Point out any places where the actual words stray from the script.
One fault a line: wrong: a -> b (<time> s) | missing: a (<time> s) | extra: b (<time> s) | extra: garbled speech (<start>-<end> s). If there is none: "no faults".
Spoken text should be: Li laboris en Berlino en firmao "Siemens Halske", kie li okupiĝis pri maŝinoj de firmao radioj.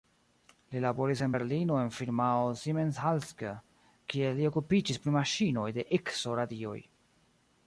wrong: firmao -> ikso (6.0 s)